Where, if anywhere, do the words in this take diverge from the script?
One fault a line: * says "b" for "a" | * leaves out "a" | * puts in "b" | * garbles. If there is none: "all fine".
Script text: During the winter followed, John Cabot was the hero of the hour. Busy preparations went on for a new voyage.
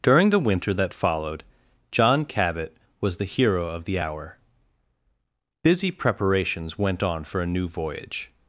* puts in "that"